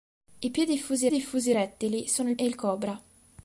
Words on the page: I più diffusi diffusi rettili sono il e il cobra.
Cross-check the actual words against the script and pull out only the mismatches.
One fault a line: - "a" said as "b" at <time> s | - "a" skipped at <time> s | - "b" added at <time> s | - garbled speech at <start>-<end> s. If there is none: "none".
none